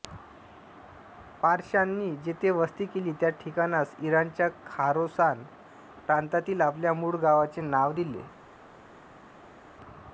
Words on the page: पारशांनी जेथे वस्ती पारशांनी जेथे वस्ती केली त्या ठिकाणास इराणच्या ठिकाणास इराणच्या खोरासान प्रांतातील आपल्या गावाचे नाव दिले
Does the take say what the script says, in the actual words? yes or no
no